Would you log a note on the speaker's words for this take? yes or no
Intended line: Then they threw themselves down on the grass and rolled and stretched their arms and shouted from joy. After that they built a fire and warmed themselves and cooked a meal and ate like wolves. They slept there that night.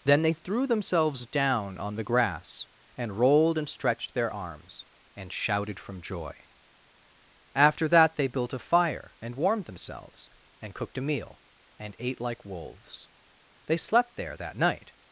no